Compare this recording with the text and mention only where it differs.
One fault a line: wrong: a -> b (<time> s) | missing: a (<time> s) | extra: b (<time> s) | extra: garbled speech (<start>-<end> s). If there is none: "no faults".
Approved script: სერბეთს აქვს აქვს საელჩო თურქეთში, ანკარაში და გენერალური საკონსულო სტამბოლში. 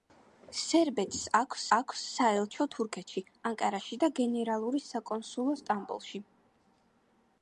no faults